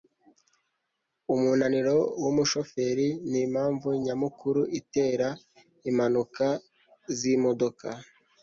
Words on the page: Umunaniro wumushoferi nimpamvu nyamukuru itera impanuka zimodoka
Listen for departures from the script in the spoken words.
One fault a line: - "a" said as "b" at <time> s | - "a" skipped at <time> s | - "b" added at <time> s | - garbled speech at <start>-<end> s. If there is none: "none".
none